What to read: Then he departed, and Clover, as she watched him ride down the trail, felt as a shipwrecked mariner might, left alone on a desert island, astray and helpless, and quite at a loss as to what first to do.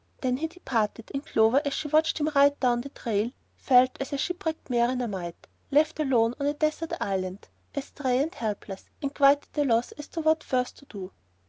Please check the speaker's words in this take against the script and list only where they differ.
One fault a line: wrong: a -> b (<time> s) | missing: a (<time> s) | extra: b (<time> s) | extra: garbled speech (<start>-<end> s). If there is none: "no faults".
no faults